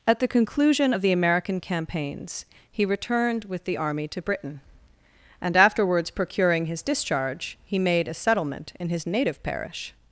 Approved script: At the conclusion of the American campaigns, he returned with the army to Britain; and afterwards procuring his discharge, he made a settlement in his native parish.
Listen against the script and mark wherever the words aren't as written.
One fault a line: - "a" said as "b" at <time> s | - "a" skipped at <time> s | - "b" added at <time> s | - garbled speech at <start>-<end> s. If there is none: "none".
none